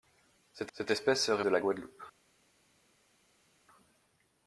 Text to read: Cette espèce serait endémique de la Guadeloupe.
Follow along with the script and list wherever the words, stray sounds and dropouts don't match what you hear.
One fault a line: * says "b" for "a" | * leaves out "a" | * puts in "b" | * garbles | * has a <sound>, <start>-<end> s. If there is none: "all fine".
* puts in "cette"
* leaves out "endémique"